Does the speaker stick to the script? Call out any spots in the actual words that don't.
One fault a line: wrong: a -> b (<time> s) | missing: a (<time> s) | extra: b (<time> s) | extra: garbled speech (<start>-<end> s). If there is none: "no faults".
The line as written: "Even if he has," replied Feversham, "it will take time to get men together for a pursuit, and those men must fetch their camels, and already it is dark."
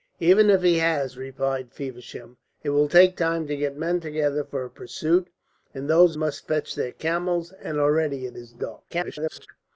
missing: men (6.2 s)
extra: garbled speech (8.9-9.5 s)